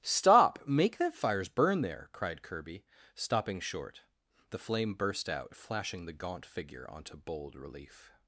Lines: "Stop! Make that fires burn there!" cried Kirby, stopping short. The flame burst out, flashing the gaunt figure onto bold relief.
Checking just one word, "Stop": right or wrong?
right